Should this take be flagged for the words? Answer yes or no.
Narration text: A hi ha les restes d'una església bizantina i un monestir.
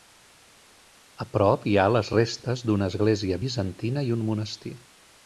yes